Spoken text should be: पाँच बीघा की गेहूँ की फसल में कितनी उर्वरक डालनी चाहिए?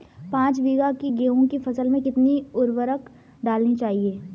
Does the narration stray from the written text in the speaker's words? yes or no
no